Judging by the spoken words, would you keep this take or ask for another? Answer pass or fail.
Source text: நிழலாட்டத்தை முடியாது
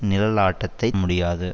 pass